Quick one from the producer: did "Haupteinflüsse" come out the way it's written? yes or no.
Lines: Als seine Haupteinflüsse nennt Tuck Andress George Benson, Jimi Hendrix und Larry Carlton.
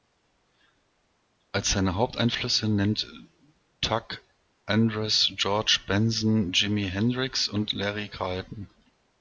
yes